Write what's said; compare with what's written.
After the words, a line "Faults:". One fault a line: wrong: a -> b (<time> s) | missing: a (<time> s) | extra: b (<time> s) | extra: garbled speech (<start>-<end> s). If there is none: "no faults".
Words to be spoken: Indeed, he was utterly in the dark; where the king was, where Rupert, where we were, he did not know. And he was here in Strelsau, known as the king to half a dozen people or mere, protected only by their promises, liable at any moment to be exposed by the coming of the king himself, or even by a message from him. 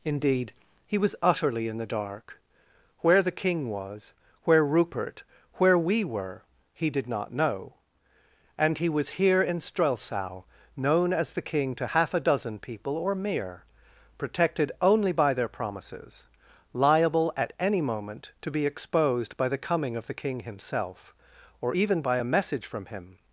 Indeed, he was utterly in the dark; where the king was, where Rupert, where we were, he did not know. And he was here in Strelsau, known as the king to half a dozen people or mere, protected only by their promises, liable at any moment to be exposed by the coming of the king himself, or even by a message from him.
Faults:
no faults